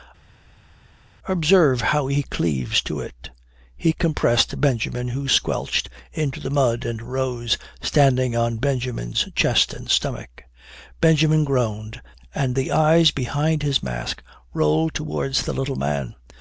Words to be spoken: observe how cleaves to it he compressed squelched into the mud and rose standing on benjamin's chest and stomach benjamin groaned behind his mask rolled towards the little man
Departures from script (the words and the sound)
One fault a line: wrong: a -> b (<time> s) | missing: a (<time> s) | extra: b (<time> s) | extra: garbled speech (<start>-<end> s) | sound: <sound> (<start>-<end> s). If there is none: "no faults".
extra: he (2.1 s)
extra: benjamin who (4.6 s)
extra: and the eyes (12.3 s)